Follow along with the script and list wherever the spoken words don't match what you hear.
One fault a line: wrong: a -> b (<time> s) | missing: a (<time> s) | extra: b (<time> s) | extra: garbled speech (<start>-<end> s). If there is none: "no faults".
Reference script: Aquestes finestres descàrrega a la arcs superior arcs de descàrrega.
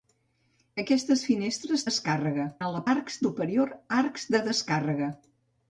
no faults